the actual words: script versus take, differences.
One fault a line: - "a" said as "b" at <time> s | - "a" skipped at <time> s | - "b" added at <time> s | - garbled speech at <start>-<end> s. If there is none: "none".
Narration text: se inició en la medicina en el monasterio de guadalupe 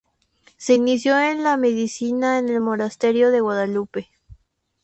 none